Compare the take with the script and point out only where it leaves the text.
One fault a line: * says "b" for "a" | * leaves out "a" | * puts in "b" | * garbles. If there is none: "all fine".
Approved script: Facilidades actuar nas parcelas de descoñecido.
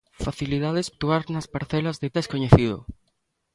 all fine